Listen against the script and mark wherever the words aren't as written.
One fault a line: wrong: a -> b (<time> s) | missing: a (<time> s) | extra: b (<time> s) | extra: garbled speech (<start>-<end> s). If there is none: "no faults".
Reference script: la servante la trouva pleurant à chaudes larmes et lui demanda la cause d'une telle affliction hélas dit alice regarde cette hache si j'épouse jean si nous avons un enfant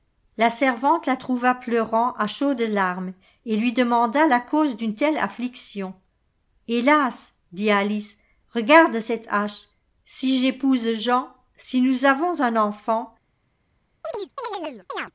no faults